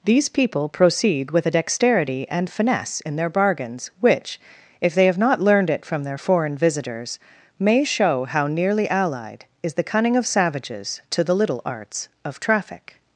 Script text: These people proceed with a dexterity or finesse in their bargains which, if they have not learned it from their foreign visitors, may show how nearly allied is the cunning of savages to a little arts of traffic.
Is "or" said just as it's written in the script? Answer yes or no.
no